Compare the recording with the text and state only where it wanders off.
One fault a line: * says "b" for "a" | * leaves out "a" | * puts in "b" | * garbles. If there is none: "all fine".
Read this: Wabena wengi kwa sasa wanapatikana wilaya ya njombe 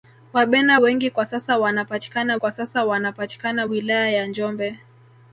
* puts in "kwa sasa wanapatikana"